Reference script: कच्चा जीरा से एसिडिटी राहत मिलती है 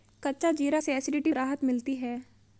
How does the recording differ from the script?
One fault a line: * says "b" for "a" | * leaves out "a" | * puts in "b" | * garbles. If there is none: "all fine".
all fine